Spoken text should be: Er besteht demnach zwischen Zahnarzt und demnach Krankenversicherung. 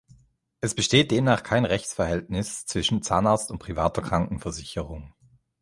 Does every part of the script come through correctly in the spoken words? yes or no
no